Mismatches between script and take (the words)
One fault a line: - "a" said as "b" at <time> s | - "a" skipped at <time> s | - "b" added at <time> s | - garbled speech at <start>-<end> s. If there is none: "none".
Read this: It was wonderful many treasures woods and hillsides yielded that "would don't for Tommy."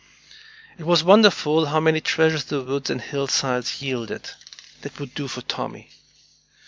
- "how" added at 1.7 s
- "the" added at 2.5 s
- "don't" said as "do" at 5.1 s